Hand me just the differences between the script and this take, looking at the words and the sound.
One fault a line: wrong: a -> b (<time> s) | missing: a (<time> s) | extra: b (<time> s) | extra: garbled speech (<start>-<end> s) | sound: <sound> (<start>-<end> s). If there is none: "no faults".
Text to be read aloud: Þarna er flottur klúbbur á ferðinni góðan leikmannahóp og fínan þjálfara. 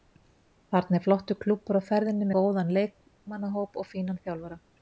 no faults